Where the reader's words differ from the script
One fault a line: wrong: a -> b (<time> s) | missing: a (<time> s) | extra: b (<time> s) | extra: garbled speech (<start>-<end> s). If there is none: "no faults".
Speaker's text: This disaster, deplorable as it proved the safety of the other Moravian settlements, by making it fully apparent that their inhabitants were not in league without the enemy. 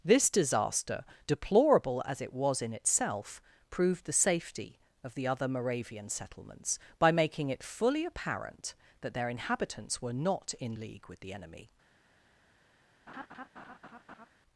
extra: was in itself (2.3 s)
wrong: without -> with (11.1 s)